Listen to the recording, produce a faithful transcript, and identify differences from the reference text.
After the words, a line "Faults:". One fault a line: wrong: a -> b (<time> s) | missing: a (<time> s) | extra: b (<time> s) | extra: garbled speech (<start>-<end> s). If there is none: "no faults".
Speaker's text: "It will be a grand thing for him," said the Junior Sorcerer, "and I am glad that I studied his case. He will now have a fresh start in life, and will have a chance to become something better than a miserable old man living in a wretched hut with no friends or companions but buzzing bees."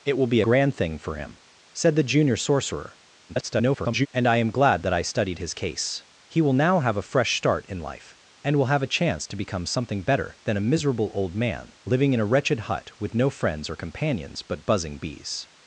"It will be grand thing for him," said the Junior Sorcerer, [garbled] "and I am glad that I studied his case. He will now have a fresh start in life, and will have a chance to become something better than a miserable old man living in a wretched hut with no friends or companions but buzzing bees."
Faults:
missing: a (0.4 s)
extra: garbled speech (3.3-4.1 s)